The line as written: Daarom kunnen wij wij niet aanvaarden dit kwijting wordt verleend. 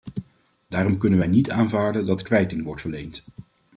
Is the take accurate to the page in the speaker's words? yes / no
no